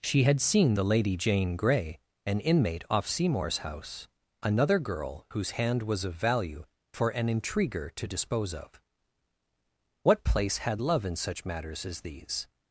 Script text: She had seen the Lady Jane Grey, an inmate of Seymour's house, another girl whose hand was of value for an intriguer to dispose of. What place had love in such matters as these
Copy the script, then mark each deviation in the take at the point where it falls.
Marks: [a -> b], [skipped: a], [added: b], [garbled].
She had seen the Lady Jane Grey, an inmate [of -> off] Seymour's house, another girl whose hand was of value for an intriguer to dispose of. What place had love in such matters as these